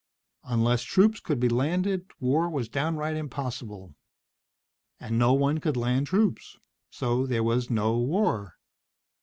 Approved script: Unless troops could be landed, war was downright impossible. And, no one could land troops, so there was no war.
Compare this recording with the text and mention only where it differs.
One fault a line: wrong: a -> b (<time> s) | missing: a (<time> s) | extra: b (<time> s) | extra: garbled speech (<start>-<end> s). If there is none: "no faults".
no faults